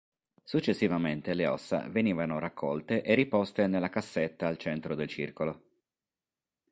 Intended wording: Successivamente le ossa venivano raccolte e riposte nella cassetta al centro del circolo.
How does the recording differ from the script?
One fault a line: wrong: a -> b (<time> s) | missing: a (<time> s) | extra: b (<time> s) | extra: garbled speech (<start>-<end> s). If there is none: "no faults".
no faults